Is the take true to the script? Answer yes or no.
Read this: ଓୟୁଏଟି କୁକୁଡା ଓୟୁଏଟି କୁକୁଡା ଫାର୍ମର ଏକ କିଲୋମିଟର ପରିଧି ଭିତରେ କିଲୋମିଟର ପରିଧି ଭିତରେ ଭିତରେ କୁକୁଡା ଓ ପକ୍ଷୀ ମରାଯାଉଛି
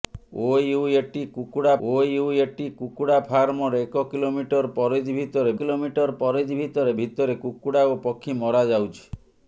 yes